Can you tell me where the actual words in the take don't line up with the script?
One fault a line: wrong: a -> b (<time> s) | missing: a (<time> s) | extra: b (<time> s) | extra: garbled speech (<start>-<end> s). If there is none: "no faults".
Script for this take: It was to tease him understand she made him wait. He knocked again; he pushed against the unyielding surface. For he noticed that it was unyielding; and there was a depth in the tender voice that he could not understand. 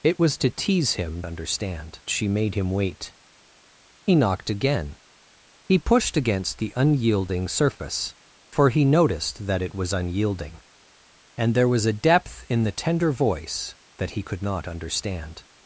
no faults